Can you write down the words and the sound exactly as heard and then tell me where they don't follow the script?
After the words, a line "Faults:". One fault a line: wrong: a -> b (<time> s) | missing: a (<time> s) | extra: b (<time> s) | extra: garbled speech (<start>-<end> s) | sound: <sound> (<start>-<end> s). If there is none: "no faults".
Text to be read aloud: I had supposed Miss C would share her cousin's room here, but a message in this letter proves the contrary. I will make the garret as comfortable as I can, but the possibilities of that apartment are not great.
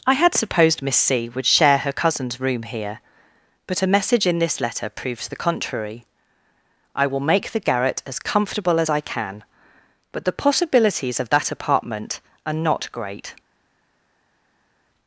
I had supposed Miss C would share her cousin's room here, but a message in this letter proves the contrary. I will make the garret as comfortable as I can, but the possibilities of that apartment are not great.
Faults:
no faults